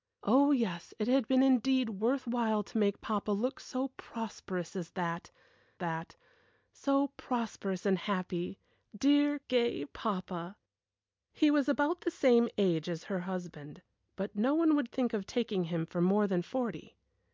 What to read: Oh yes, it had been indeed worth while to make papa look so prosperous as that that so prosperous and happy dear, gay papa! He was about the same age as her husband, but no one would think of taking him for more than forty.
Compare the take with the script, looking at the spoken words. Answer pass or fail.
pass